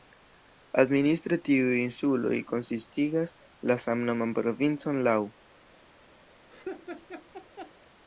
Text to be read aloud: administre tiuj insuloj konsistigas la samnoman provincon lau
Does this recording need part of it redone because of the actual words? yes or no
no